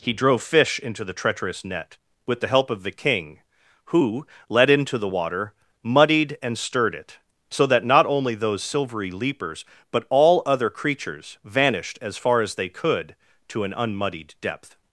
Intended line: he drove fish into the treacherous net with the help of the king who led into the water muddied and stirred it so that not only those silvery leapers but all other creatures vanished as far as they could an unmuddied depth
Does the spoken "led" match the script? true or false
true